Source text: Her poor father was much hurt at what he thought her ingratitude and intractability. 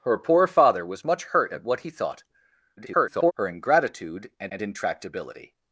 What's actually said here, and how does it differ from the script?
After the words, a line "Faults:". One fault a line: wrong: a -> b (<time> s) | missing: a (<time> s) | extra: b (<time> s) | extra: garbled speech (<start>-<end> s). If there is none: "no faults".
Her poor father was much hurt at what he thought [garbled] her ingratitude and and intractability.
Faults:
extra: garbled speech (2.8-3.3 s)
extra: and (4.5 s)